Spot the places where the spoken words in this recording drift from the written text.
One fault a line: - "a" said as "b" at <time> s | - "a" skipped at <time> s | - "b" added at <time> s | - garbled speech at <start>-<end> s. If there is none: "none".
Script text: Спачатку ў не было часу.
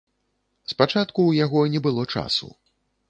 - "яго" added at 1.4 s